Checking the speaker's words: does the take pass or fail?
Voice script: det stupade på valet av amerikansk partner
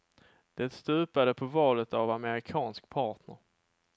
pass